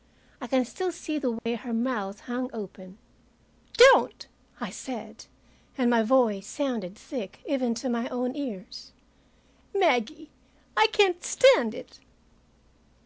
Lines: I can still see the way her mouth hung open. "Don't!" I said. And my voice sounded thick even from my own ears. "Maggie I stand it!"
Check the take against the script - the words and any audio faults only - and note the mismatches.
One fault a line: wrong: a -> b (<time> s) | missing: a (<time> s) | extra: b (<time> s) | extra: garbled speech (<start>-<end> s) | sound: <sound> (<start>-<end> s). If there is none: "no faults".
sound: dropout (1.4-1.5 s)
wrong: from -> to (7.7 s)
extra: can't (10.9 s)